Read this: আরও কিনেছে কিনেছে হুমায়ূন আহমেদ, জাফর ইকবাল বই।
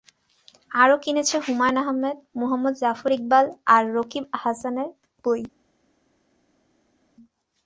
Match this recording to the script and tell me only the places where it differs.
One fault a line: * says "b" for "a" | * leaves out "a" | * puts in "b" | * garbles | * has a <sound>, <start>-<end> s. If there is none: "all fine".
* leaves out "কিনেছে"
* puts in "মুহম্মদ"
* puts in "আর রকিব হাসানের"